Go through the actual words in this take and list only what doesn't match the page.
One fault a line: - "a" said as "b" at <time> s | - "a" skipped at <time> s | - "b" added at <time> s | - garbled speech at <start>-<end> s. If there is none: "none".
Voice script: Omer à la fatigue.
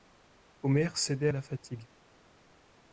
- "cédait" added at 1.0 s